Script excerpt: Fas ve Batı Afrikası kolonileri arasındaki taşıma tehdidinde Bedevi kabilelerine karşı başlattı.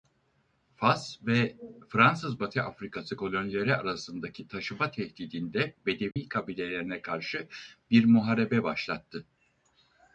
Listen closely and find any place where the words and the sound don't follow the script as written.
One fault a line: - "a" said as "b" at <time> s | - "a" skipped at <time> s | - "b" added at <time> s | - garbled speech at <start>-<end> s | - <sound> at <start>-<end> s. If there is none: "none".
- "Fransız" added at 1.9 s
- dropout at 6.1-6.2 s
- "bir muharebe" added at 7.9 s